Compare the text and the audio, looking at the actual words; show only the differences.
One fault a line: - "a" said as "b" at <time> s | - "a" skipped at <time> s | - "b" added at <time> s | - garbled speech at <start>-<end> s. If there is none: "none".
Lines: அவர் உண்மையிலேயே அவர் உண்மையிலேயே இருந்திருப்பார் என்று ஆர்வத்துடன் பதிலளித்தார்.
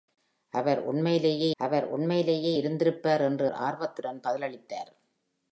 none